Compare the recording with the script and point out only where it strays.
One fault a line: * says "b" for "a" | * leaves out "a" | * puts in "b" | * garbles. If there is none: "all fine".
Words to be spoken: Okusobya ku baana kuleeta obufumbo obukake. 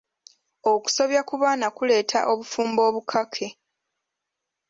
all fine